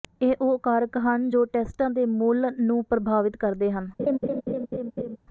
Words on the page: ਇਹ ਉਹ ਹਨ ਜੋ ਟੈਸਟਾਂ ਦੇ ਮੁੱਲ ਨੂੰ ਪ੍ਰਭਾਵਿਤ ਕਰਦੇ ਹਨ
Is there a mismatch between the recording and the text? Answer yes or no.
yes